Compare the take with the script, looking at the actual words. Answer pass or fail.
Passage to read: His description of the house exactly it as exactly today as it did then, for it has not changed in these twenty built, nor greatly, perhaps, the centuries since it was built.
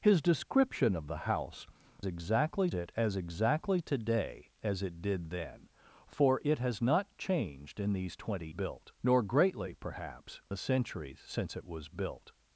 pass